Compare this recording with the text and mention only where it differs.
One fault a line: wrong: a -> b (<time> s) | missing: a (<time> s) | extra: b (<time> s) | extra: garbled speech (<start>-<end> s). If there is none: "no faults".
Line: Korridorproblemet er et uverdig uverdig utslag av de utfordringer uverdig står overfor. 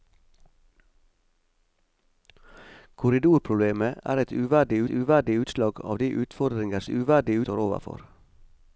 no faults